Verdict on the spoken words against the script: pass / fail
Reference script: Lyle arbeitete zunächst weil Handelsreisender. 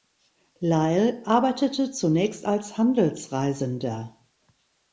fail